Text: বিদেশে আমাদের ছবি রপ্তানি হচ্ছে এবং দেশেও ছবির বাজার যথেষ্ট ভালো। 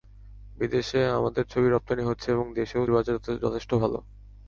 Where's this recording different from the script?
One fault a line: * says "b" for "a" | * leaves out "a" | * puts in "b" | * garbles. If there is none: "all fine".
* leaves out "ছবির"